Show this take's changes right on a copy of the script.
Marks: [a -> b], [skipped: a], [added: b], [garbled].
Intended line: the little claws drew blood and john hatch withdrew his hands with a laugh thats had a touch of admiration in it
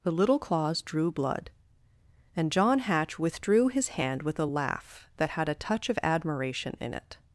the little claws drew blood and john hatch withdrew his [hands -> hand] with a laugh [thats -> that] had a touch of admiration in it